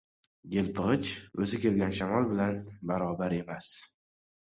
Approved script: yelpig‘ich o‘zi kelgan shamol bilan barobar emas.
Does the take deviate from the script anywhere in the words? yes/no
no